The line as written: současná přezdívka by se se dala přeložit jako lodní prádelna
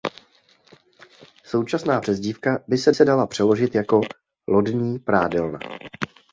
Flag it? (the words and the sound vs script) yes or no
no